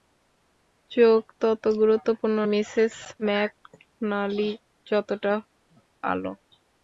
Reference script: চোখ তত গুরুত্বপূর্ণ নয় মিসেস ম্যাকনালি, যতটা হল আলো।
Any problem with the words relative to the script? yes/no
yes